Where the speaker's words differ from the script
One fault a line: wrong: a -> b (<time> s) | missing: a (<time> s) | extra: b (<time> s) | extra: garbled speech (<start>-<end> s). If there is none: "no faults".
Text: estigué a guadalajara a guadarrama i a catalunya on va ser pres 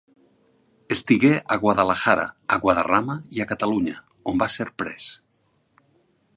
no faults